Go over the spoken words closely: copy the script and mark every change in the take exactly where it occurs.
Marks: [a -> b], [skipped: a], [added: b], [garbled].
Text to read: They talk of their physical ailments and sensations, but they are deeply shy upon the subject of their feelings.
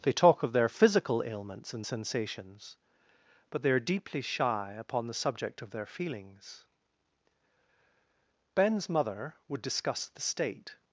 They talk of their physical ailments and sensations, but they are deeply shy upon the subject of their feelings. [added: Ben's mother would discuss the state]